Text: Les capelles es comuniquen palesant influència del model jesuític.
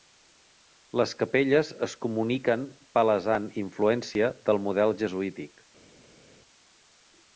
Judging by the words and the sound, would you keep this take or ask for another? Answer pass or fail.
pass